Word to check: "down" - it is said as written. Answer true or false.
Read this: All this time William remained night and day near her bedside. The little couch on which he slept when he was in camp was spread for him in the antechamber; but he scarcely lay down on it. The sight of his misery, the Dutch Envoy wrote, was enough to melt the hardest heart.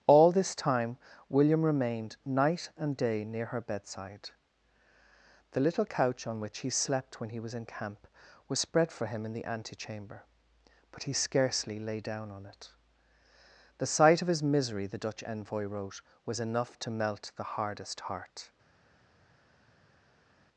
true